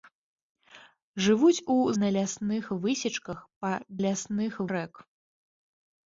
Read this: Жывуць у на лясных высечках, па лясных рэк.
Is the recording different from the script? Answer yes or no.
no